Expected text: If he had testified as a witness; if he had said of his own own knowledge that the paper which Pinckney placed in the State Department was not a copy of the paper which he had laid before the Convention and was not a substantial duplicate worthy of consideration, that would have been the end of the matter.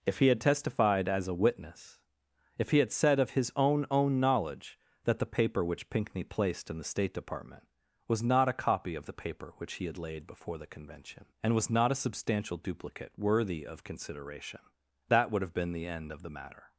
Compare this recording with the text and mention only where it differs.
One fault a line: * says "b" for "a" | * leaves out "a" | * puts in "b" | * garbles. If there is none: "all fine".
all fine